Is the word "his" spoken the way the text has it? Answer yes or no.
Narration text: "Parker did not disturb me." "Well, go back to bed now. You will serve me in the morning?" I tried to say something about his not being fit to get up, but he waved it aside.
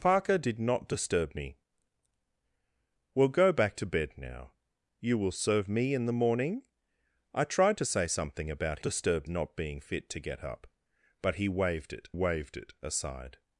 no